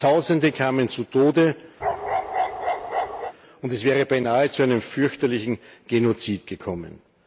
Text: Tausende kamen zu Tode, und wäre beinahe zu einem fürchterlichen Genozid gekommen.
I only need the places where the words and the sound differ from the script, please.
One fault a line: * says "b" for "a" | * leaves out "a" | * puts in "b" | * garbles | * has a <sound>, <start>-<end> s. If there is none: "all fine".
* has a bark, 1.8-3.3 s
* puts in "es"